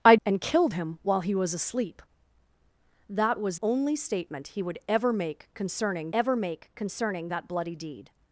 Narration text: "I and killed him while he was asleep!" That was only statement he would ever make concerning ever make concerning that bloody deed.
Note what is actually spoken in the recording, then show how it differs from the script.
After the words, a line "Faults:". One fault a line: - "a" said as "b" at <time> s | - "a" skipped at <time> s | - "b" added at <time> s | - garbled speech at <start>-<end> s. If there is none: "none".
"I and killed him while he was asleep!" That was only statement he would ever make concerning ever make concerning that bloody deed.
Faults:
none